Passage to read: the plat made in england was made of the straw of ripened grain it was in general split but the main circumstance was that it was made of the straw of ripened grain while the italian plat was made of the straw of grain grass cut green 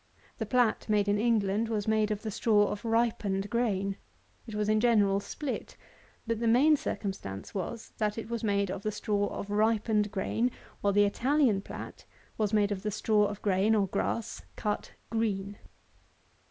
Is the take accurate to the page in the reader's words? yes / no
no